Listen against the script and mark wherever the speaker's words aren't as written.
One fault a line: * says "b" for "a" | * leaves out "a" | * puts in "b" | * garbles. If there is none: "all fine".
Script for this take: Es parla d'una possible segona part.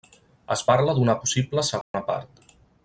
all fine